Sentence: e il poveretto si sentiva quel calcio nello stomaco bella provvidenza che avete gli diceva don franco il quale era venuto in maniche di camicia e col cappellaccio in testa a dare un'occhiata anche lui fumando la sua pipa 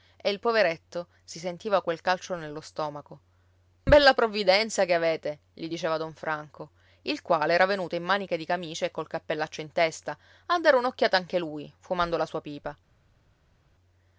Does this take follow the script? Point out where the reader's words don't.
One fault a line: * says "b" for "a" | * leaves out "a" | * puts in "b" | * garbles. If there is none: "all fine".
all fine